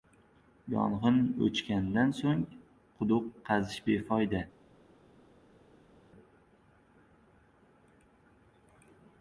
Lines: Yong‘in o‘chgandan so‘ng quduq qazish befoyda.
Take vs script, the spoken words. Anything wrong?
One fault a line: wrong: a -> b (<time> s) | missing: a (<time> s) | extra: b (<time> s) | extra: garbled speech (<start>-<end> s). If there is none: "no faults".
no faults